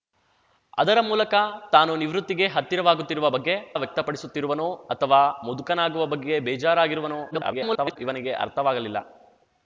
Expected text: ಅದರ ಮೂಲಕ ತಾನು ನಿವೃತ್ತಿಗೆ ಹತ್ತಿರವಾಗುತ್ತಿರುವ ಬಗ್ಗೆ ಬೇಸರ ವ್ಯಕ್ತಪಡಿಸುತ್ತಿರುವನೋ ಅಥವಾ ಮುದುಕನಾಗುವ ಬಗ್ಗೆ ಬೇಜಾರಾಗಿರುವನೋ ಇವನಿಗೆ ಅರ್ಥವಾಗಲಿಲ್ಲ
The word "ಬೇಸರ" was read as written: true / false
false